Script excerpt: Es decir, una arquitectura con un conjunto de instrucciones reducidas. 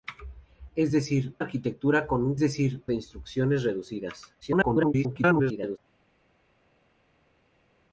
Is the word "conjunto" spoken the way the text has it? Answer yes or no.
no